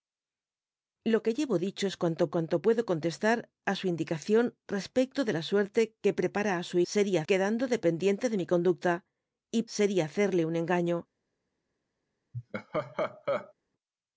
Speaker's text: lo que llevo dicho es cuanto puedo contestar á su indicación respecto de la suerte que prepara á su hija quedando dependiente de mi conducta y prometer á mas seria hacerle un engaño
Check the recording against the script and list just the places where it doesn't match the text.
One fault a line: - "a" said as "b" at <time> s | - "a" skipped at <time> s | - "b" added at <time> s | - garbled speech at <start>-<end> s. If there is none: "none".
- "cuanto" added at 2.3 s
- "hija" said as "seria" at 6.9 s
- "prometer á mas" skipped at 9.6 s